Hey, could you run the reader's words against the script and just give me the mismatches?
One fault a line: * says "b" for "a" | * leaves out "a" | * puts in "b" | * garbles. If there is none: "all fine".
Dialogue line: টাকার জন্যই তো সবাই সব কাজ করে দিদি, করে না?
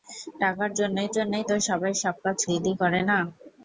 * puts in "জন্যই"
* leaves out "করে"